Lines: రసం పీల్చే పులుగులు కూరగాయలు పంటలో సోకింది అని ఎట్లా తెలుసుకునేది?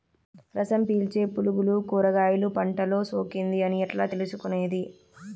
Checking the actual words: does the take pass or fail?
pass